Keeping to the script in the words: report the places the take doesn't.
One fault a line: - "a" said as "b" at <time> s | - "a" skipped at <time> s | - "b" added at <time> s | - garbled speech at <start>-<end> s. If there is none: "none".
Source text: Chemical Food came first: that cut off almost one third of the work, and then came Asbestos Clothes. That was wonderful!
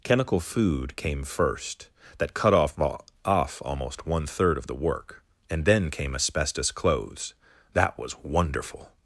- "off" added at 3.2 s